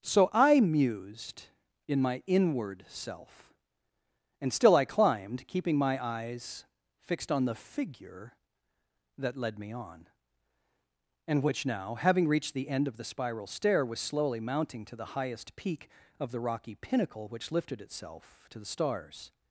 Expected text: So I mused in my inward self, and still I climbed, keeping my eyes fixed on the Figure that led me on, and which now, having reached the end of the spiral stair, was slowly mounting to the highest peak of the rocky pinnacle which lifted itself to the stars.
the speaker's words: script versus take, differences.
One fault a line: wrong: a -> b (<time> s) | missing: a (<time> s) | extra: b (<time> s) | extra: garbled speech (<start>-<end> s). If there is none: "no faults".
no faults